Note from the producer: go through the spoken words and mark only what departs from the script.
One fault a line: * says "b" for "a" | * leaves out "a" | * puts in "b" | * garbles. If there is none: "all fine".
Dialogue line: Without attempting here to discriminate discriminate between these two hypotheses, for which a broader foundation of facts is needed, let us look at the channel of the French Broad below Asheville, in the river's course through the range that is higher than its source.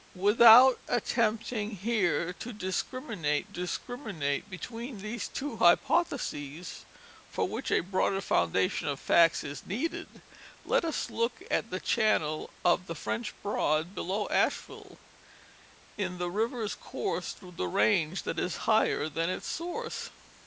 all fine